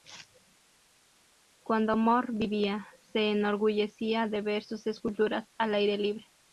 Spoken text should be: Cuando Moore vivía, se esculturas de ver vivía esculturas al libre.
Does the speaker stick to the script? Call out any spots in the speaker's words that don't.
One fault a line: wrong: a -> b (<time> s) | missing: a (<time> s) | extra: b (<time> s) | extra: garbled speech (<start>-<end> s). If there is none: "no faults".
wrong: esculturas -> enorgullecía (3.3 s)
wrong: vivía -> sus (4.6 s)
extra: aire (5.7 s)